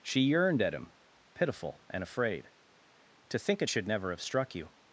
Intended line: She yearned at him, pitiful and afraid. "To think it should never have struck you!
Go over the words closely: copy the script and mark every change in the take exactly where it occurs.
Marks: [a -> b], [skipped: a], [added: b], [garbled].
She yearned at him, pitiful and afraid. "To think it should never have struck you!